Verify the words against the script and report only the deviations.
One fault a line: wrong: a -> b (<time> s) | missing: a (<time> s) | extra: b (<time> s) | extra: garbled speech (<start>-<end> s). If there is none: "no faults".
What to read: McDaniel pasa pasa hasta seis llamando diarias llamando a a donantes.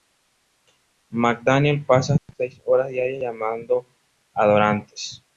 missing: pasa (2.1 s)
wrong: llamando -> horas (2.6 s)
missing: a (4.5 s)